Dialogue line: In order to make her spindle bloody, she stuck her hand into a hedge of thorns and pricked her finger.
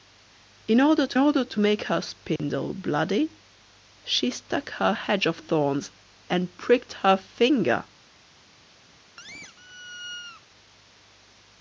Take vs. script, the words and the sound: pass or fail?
fail